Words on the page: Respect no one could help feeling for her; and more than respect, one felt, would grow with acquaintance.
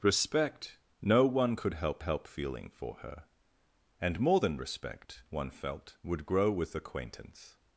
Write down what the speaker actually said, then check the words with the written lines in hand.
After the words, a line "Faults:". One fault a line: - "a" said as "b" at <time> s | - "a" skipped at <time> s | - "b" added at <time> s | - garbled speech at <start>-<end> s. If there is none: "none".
Respect no one could help help feeling for her; and more than respect, one felt, would grow with acquaintance.
Faults:
- "help" added at 2.0 s